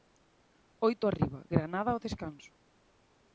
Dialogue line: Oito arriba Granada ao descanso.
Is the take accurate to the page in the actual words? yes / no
yes